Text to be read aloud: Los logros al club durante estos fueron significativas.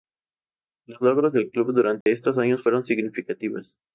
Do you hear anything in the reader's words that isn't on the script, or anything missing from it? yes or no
yes